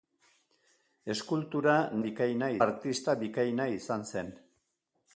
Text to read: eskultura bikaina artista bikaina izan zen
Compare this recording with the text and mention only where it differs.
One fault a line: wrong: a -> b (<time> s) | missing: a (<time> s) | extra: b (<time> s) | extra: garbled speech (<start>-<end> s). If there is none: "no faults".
no faults